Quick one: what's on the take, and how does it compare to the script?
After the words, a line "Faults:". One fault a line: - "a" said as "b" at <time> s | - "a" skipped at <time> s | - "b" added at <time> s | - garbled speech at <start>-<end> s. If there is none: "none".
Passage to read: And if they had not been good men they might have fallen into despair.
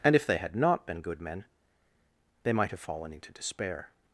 And if they had not been good men they might have fallen into despair.
Faults:
none